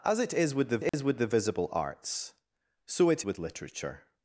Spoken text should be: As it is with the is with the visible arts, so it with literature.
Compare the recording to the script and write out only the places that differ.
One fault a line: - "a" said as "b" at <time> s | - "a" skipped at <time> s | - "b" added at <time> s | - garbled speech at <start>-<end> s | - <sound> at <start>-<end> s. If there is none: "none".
- dropout at 0.9-0.9 s